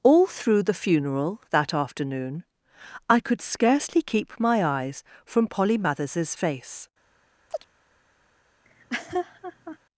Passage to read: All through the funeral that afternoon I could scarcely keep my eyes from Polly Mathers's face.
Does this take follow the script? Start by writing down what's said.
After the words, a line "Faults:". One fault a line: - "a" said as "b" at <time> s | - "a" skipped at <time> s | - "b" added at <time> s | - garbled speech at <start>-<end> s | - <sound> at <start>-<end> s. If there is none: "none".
All through the funeral that afternoon I could scarcely keep my eyes from Polly Mathers's face.
Faults:
- chirp at 7.5-7.7 s
- laugh at 8.6-9.8 s